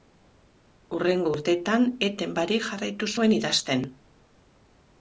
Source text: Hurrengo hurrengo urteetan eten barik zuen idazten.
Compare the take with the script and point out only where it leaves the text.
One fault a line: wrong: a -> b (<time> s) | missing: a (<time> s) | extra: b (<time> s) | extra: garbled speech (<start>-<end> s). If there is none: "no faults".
missing: hurrengo (1.3 s)
extra: jarraitu (2.7 s)